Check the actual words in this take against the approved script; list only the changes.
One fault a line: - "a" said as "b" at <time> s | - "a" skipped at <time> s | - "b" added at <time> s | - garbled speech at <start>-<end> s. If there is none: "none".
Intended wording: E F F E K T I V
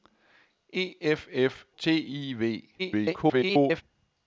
- "E K" skipped at 1.6 s
- garbled speech at 2.8-3.8 s